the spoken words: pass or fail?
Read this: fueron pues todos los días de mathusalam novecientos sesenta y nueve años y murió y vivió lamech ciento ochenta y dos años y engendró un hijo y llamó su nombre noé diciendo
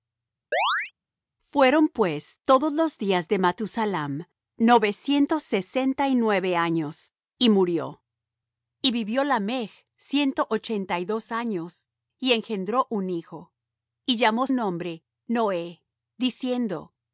fail